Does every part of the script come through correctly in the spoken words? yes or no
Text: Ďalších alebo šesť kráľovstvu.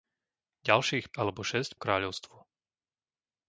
yes